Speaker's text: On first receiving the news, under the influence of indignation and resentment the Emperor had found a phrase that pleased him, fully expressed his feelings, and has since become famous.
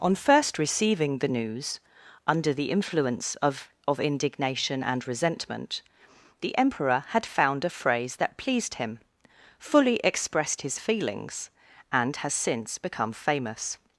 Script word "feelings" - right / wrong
right